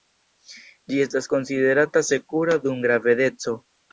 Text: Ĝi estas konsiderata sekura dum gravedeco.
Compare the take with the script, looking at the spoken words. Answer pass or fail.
pass